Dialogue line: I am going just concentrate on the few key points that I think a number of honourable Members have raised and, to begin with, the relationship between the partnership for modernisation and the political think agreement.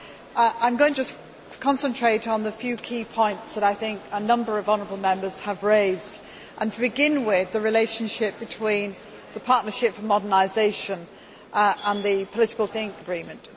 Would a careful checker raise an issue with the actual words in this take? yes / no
no